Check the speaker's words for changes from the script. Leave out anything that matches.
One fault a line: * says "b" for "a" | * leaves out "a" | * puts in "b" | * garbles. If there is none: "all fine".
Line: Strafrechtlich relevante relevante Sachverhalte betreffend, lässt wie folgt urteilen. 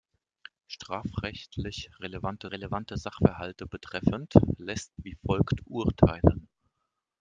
all fine